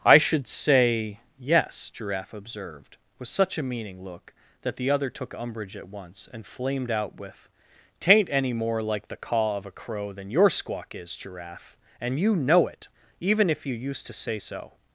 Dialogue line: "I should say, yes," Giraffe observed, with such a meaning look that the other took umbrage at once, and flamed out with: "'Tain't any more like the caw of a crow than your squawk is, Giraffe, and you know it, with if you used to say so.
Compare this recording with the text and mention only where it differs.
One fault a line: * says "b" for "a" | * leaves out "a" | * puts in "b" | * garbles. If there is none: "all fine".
* says "even" for "with"